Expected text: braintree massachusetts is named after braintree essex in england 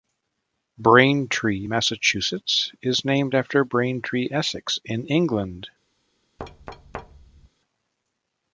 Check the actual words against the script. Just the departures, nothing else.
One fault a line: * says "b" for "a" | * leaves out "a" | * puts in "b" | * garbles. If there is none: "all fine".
all fine